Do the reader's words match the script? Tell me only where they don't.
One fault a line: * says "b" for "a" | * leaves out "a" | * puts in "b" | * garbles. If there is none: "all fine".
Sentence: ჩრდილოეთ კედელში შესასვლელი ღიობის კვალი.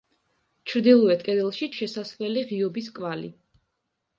all fine